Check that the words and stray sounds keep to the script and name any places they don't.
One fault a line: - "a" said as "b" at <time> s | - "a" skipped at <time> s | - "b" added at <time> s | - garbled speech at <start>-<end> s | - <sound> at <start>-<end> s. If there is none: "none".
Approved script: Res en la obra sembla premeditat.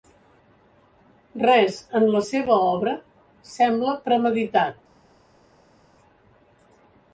- "seva" added at 2.3 s